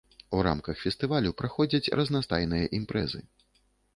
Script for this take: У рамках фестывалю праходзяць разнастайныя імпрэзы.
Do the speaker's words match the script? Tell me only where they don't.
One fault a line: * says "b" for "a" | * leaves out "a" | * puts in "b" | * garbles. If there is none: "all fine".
all fine